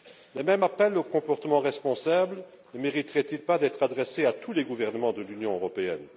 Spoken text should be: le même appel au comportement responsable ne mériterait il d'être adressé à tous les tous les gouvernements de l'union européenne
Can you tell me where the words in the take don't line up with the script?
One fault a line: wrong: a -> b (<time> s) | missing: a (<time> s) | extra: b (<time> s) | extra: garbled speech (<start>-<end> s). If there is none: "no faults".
extra: pas (3.4 s)
missing: tous les (4.6 s)